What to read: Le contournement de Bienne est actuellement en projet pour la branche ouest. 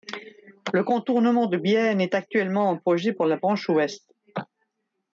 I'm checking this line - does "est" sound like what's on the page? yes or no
yes